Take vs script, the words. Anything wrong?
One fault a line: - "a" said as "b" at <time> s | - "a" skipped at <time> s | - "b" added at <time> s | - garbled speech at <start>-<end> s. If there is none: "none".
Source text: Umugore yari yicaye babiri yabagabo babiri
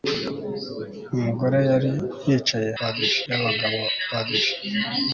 none